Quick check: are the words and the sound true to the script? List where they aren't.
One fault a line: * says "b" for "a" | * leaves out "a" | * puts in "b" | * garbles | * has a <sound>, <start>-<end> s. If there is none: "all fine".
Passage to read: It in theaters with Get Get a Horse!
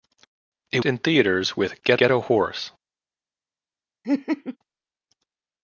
* has a laugh, 4.0-4.6 s